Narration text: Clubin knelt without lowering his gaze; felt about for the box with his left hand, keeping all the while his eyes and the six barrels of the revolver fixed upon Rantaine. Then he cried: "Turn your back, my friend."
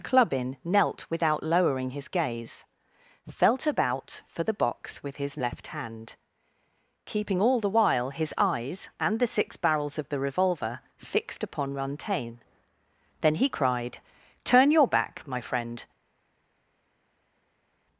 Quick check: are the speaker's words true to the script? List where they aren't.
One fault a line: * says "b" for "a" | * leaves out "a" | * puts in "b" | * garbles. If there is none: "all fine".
all fine